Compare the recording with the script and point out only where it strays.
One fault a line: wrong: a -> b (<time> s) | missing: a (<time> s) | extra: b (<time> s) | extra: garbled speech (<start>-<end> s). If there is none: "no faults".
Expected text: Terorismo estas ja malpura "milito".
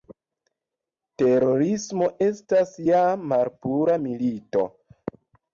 no faults